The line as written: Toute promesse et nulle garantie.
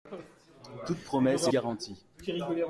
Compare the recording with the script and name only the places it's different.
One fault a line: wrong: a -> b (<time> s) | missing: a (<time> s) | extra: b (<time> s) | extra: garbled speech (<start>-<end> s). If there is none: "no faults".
missing: nulle (1.5 s)